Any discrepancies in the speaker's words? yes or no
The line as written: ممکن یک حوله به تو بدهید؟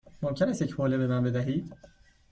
yes